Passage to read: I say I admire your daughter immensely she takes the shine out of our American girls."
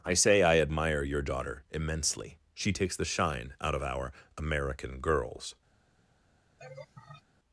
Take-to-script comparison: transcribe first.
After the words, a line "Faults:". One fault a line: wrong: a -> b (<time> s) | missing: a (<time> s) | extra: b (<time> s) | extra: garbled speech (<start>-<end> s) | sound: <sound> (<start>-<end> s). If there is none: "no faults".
I say I admire your daughter immensely she takes the shine out of our American girls."
Faults:
sound: laugh (6.6-7.2 s)